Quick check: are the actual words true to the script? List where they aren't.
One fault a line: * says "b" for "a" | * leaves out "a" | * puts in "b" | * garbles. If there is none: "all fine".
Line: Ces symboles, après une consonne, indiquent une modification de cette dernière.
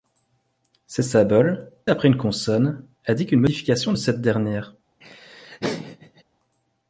all fine